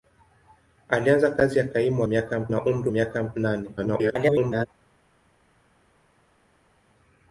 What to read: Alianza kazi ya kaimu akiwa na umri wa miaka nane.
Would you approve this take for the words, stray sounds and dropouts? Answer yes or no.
no